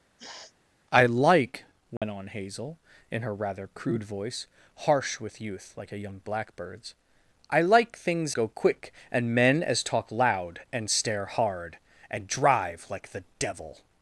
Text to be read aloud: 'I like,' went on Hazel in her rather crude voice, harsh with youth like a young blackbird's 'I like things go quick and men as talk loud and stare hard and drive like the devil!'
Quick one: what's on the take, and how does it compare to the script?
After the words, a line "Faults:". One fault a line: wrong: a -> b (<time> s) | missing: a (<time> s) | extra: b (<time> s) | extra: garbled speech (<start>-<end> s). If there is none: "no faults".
'I like,' went on Hazel in her rather crude voice, harsh with youth like a young blackbird's 'I like things go quick and men as talk loud and stare hard and drive like the devil!'
Faults:
no faults